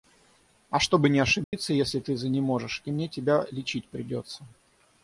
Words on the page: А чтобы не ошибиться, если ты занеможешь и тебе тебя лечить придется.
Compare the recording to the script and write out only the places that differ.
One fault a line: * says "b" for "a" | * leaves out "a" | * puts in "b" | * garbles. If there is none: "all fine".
* says "мне" for "тебе"